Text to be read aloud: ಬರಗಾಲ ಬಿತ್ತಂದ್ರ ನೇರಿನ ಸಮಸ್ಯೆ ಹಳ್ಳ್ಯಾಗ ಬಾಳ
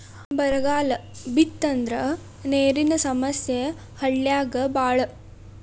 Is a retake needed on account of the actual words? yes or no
no